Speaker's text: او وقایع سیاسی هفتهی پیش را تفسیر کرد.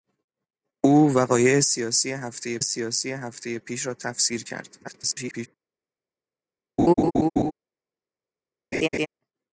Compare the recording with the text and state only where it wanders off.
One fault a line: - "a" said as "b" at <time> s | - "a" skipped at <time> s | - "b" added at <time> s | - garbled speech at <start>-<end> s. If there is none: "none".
- "سیاسی هفتهی" added at 2.6 s
- garbled speech at 4.8-5.5 s